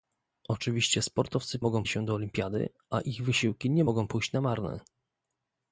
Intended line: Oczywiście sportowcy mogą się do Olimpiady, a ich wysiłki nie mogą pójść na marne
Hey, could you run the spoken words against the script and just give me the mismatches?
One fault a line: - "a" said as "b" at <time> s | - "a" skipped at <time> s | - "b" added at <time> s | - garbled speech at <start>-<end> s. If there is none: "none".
none